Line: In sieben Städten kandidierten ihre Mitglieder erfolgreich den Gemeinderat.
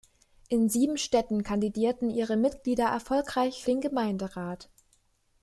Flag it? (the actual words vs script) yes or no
no